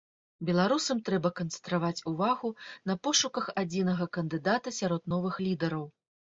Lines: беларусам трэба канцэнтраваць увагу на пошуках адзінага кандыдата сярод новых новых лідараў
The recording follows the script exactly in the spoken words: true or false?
false